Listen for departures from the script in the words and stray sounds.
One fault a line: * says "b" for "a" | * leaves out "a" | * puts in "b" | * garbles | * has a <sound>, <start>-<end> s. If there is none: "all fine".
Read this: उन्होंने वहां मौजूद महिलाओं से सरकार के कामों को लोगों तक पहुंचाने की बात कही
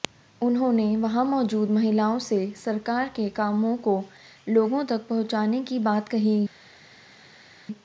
all fine